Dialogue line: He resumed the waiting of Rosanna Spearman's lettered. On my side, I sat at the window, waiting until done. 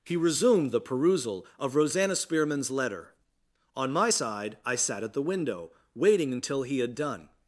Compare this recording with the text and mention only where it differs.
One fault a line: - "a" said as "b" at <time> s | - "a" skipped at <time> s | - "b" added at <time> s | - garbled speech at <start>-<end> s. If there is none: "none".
- "waiting" said as "perusal" at 0.8 s
- "lettered" said as "letter" at 2.7 s
- "he had" added at 6.6 s